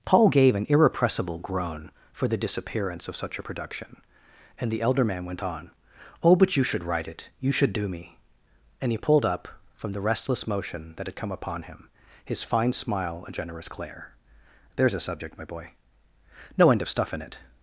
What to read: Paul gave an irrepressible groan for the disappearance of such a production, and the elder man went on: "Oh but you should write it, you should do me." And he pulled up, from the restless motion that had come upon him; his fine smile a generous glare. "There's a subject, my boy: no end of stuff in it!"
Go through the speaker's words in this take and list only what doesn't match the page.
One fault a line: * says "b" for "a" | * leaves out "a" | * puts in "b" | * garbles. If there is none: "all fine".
all fine